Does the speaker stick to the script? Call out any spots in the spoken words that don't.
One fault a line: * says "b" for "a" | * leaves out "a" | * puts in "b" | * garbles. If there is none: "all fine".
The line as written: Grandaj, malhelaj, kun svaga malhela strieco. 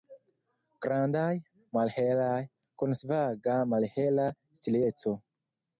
all fine